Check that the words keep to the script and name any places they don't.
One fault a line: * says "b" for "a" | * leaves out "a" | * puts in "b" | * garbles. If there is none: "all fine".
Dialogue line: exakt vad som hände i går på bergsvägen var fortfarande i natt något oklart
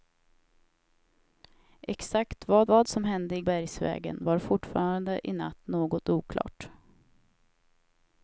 * puts in "vad"
* leaves out "går på"